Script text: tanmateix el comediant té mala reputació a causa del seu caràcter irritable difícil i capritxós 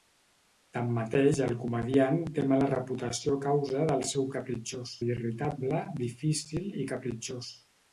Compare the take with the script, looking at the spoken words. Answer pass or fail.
fail